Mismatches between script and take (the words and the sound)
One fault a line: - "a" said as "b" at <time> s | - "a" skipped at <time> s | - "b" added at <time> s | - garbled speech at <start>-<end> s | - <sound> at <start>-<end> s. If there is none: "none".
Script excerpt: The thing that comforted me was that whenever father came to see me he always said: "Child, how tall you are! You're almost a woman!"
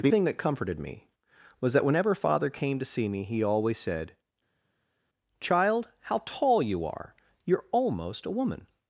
none